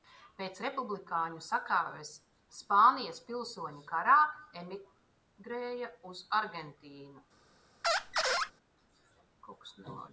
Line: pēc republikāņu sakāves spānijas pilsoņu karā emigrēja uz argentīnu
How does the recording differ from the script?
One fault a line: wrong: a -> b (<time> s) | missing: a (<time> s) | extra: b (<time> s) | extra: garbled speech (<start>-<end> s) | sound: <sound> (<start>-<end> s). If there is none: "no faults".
sound: squeak (7.8-8.5 s)